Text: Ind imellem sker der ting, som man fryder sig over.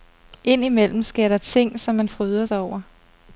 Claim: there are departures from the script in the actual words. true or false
false